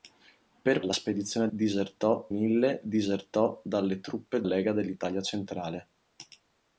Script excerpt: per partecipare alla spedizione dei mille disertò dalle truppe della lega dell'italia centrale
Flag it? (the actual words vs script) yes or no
yes